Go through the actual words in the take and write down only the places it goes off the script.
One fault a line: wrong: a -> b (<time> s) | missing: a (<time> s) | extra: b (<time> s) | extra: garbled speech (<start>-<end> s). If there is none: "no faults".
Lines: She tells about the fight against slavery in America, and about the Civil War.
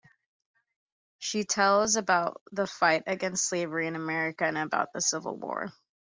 no faults